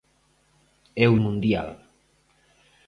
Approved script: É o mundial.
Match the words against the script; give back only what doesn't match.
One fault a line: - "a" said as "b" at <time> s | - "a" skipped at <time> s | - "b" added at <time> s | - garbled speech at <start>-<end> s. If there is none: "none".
none